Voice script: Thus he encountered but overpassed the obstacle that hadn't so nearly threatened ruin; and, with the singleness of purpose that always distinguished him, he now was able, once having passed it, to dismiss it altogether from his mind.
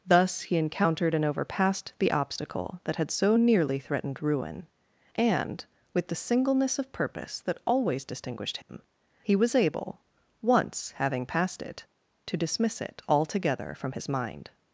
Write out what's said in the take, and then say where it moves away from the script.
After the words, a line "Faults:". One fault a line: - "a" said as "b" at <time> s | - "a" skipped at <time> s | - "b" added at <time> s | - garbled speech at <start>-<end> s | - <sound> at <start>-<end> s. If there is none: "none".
Thus he encountered and overpassed the obstacle that had so nearly threatened ruin; and, with the singleness of purpose that always distinguished him, he was able, once having passed it, to dismiss it altogether from his mind.
Faults:
- "but" said as "and" at 1.1 s
- "hadn't" said as "had" at 3.0 s
- dropout at 8.6-8.7 s
- "now" skipped at 9.3 s